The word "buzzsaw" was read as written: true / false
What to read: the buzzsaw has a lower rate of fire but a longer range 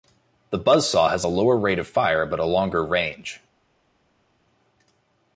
true